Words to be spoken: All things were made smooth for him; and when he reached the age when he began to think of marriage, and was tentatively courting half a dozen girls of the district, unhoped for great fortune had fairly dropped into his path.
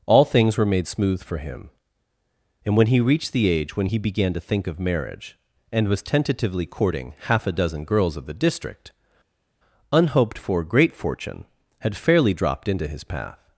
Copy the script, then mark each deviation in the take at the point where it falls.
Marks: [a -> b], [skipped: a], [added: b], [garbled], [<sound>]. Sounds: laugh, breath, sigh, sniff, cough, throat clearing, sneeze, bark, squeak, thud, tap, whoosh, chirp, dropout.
All things were made smooth for him; and when he reached the age when he began to think of marriage, and was tentatively courting half a dozen girls of the district, unhoped for great fortune had fairly dropped into his path.